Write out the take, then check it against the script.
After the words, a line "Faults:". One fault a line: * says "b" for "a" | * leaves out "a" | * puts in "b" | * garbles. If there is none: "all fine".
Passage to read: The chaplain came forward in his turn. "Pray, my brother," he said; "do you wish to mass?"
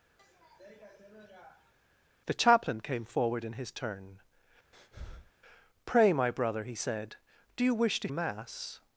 The chaplain came forward in his turn. "Pray, my brother," he said; "do you wish to mass?"
Faults:
all fine